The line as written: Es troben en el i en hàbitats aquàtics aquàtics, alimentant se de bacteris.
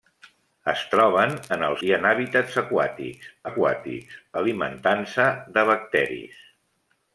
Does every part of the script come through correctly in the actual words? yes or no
yes